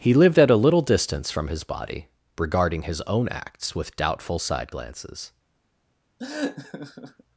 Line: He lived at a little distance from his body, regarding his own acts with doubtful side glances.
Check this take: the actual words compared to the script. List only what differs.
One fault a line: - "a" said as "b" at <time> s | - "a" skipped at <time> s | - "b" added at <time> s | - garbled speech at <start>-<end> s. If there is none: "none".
none